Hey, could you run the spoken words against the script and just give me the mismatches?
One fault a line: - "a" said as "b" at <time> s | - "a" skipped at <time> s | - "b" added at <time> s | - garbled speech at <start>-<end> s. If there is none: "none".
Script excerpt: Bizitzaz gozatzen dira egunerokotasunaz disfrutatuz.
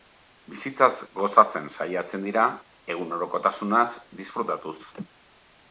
- "saiatzen" added at 1.8 s